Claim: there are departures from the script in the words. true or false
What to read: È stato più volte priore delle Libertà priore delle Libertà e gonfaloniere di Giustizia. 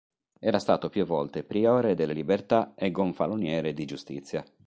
true